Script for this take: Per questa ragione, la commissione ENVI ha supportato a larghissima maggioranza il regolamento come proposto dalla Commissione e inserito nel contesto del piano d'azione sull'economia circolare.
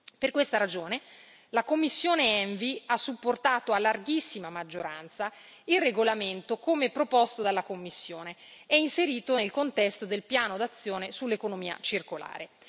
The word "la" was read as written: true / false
true